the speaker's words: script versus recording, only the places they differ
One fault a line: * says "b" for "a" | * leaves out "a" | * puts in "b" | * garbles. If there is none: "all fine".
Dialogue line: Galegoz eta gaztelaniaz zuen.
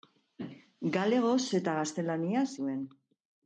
all fine